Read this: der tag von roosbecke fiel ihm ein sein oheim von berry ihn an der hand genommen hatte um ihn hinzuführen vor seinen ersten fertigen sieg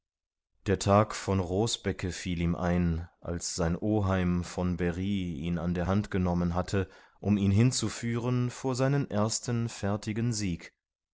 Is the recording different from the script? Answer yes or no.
yes